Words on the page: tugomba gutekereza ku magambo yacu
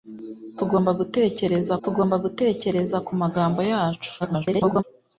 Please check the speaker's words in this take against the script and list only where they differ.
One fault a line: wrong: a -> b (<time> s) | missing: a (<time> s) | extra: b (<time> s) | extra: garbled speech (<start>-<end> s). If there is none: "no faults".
extra: tugomba gutekereza (1.8 s)
extra: garbled speech (4.2-4.8 s)